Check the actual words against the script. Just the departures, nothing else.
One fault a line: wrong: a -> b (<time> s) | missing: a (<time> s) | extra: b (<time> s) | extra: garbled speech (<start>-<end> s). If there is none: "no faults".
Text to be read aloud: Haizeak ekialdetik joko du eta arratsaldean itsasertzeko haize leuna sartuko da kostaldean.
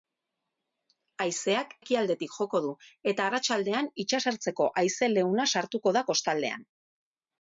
no faults